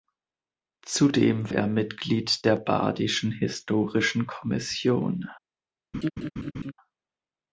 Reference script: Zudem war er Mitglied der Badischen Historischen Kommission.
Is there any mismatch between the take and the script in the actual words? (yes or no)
yes